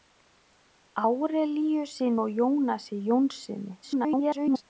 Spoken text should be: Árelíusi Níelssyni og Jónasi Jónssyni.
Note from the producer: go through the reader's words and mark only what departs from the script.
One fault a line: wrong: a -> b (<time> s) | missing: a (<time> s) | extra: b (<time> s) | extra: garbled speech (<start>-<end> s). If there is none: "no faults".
missing: Níelssyni (2.1 s)
extra: garbled speech (3.8-4.6 s)